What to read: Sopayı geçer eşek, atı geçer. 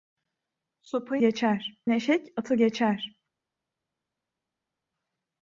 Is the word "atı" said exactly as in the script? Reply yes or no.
yes